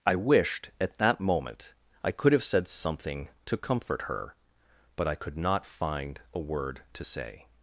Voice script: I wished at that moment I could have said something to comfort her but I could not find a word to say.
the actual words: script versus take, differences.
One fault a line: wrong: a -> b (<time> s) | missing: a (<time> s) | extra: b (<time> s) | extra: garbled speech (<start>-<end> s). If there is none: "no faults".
no faults